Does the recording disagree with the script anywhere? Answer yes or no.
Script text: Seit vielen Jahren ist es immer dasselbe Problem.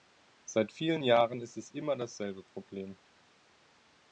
no